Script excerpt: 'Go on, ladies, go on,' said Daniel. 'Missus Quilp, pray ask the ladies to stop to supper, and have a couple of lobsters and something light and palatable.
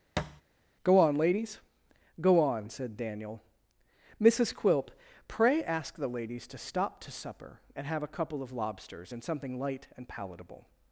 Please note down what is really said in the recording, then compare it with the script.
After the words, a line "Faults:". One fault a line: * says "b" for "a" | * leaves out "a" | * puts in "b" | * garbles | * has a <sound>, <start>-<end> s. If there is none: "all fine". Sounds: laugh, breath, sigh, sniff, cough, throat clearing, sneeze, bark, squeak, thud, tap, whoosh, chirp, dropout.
'Go on, ladies, go on,' said Daniel. 'Missus Quilp, pray ask the ladies to stop to supper, and have a couple of lobsters and something light and palatable.
Faults:
* has a thud, 0.2-0.4 s